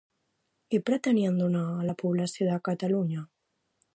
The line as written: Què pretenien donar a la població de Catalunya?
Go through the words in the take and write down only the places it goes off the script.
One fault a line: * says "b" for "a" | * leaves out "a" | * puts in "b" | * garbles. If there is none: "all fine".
all fine